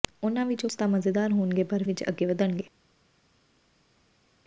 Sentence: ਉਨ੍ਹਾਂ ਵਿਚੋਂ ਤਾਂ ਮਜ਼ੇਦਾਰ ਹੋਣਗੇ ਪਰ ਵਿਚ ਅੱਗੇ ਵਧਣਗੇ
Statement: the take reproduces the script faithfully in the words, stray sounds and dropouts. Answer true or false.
true